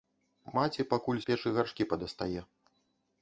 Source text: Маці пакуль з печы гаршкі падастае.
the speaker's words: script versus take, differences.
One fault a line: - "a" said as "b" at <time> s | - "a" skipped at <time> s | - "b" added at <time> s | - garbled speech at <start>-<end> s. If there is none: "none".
none